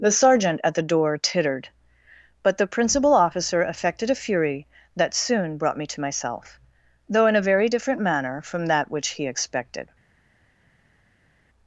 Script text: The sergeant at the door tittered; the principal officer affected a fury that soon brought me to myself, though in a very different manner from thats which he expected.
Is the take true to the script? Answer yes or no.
no